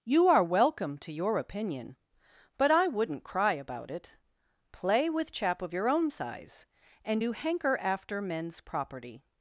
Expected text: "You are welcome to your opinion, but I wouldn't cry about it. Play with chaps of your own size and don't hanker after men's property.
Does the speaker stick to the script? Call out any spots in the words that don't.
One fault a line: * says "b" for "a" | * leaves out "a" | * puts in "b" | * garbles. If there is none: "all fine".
* says "chap" for "chaps"
* says "do" for "don't"